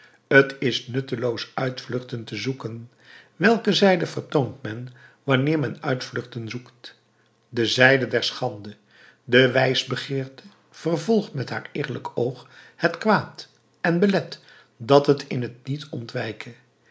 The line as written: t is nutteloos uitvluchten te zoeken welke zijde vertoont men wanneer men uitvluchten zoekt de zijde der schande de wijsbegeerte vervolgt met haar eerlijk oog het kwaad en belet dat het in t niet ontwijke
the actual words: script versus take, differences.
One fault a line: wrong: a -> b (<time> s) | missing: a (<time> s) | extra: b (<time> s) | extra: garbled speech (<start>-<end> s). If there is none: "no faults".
no faults